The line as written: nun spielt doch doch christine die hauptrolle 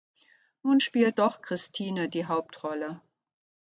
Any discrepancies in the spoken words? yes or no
yes